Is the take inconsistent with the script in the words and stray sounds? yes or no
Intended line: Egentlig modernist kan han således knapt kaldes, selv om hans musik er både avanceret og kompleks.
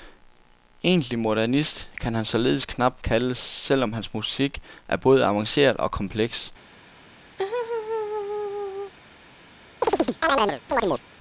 yes